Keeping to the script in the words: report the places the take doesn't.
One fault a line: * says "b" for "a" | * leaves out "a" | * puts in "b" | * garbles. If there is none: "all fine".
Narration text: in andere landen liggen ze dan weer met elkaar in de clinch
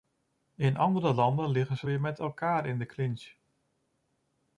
* leaves out "dan"